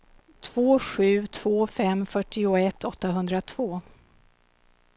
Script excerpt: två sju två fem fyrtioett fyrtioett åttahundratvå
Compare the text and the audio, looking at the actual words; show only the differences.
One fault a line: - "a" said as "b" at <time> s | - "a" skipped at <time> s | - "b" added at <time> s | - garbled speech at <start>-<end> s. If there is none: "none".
- "fyrtioett" skipped at 2.8 s